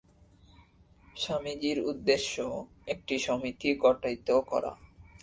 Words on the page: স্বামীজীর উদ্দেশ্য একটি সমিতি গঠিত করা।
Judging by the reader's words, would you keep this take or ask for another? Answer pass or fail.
pass